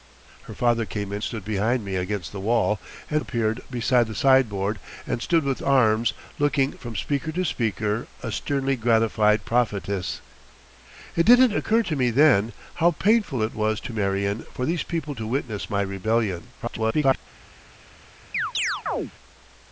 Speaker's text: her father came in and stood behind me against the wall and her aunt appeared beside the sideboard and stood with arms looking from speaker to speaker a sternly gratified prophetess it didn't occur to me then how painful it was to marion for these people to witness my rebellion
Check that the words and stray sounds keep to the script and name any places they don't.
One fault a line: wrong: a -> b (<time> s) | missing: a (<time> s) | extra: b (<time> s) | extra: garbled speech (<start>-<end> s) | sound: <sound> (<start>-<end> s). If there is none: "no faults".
missing: and (1.2 s)
missing: her aunt (3.2 s)
extra: garbled speech (16.6-17.2 s)
sound: chirp (18.3-19.1 s)